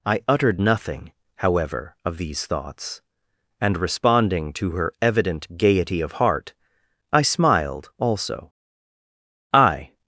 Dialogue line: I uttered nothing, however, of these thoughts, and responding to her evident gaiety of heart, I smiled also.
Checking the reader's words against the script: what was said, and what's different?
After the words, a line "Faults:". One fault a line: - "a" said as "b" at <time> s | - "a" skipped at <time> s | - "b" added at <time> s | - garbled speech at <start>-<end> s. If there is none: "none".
I uttered nothing, however, of these thoughts, and responding to her evident gaiety of heart, I smiled also. "I
Faults:
- "I" added at 9.5 s